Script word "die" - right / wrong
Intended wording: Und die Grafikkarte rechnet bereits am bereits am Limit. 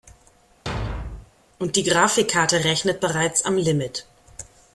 right